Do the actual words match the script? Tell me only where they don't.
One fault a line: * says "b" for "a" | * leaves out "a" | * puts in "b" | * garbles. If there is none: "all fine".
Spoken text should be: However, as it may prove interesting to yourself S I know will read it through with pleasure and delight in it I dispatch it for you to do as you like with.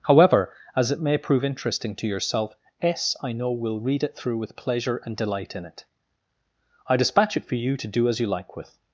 all fine